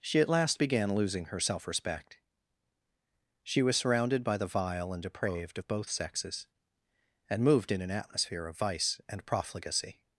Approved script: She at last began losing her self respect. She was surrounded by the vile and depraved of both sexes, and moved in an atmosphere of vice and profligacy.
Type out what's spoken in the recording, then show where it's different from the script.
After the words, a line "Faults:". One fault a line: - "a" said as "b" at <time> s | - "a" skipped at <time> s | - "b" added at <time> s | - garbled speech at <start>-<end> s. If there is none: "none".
She at last began losing her self respect. She was surrounded by the vile and depraved of both sexes, and moved in an atmosphere of vice and profligacy.
Faults:
none